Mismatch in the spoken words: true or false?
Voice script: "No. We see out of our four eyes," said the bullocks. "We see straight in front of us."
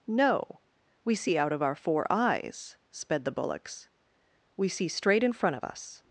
true